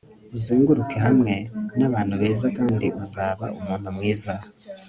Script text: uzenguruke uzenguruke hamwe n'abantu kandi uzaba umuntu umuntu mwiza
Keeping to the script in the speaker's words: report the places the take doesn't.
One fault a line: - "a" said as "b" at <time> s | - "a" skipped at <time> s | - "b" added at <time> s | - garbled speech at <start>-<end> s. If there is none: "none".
- "uzenguruke" skipped at 1.0 s
- "beza" added at 2.2 s
- "umuntu" skipped at 3.9 s